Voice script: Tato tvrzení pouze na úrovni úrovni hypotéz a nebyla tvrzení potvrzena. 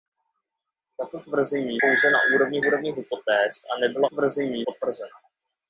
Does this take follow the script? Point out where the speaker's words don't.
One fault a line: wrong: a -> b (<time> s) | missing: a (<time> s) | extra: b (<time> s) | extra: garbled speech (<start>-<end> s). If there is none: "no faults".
no faults